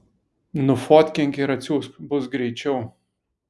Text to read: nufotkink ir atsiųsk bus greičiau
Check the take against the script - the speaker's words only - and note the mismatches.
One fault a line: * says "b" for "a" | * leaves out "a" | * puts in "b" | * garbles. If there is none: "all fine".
all fine